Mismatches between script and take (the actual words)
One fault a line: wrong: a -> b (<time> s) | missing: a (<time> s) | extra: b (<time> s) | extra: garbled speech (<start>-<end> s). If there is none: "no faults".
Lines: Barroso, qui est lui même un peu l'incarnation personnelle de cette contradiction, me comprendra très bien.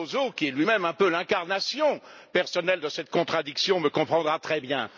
no faults